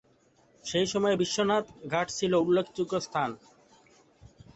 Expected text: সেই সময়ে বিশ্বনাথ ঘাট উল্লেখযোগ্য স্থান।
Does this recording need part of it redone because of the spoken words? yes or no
yes